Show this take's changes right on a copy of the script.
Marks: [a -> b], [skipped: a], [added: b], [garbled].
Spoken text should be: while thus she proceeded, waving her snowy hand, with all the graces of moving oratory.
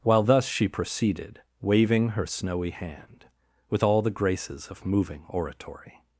while thus she proceeded, waving her snowy hand, with all the graces of moving oratory.